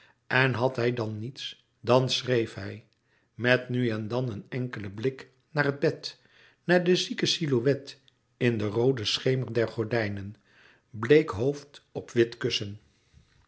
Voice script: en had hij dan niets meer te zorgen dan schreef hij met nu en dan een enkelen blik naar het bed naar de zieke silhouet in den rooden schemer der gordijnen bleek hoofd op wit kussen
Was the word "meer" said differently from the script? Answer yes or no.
yes